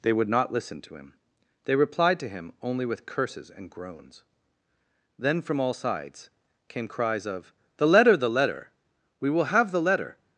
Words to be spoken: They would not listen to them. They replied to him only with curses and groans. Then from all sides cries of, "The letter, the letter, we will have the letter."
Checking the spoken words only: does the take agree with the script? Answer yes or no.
no